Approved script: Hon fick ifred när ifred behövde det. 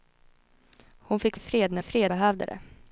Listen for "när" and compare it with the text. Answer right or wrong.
right